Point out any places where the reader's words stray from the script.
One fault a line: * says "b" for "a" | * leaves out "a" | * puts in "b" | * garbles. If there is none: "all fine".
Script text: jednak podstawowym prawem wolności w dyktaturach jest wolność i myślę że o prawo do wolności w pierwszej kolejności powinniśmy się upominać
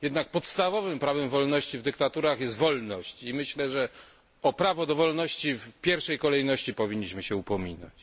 all fine